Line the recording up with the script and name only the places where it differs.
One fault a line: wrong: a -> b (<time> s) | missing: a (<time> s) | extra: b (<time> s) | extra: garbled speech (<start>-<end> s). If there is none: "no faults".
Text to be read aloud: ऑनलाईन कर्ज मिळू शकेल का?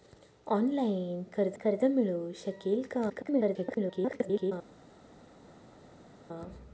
extra: कर्ज (1.5 s)
extra: garbled speech (3.1-4.5 s)